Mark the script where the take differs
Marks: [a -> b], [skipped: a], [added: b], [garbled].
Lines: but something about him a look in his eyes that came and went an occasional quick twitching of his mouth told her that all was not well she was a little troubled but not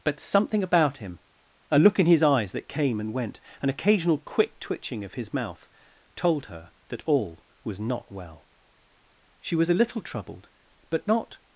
but something about him a look in his eyes that came and went an occasional quick twitching of his mouth told her that all was not well she was a little troubled but not